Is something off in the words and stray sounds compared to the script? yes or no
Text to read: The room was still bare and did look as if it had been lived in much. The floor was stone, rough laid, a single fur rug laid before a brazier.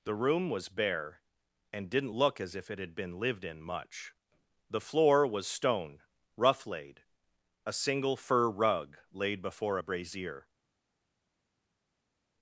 yes